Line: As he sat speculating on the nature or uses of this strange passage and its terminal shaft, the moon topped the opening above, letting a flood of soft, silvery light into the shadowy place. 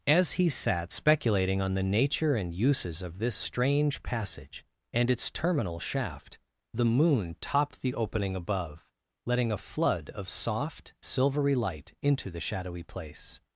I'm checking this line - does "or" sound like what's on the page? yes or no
no